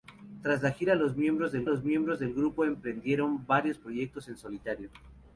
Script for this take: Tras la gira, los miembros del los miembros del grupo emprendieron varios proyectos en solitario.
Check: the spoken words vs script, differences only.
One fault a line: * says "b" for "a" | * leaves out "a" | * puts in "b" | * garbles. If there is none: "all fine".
all fine